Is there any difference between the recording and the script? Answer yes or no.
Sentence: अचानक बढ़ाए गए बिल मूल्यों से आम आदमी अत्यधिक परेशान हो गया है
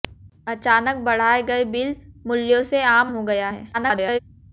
yes